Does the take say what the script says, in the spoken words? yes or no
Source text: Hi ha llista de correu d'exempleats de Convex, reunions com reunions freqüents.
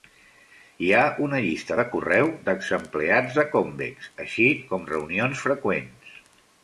no